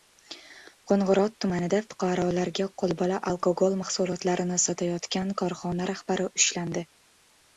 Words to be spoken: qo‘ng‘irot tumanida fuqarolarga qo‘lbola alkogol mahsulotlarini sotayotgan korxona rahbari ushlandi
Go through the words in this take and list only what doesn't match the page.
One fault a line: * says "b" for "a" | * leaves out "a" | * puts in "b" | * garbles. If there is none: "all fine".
all fine